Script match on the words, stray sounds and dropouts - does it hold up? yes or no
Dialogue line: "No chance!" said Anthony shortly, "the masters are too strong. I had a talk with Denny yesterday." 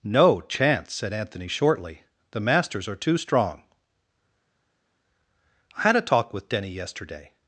yes